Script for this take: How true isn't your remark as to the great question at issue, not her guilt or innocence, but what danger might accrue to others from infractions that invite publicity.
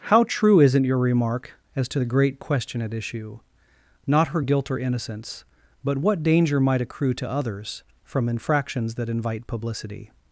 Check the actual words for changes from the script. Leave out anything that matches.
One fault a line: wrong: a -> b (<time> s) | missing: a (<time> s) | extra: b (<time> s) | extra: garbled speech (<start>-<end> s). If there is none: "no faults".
no faults